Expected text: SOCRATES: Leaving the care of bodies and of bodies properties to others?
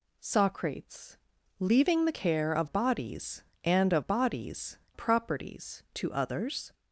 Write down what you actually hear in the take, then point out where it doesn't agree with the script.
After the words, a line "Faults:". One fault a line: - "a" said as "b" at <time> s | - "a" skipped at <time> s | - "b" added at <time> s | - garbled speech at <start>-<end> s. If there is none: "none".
SOCRATES: Leaving the care of bodies and of bodies properties to others?
Faults:
none